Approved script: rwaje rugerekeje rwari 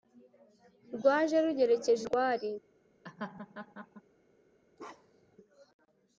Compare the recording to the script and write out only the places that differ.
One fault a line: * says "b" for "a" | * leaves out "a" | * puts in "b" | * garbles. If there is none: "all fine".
all fine